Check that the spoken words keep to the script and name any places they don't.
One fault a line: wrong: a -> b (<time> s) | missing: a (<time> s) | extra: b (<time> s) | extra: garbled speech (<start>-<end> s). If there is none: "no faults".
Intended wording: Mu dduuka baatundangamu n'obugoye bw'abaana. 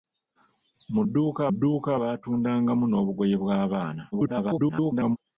extra: dduuka (1.5 s)
extra: garbled speech (4.1-5.2 s)